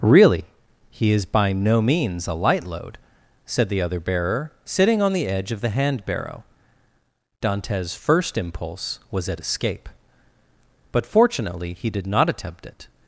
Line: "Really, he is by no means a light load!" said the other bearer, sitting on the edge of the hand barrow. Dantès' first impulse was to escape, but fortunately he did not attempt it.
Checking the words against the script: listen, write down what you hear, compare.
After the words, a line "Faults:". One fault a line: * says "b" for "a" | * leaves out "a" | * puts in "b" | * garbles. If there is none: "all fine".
"Really, he is by no means a light load!" said the other bearer, sitting on the edge of the hand barrow. Dantès' first impulse was at escape, but fortunately he did not attempt it.
Faults:
* says "at" for "to"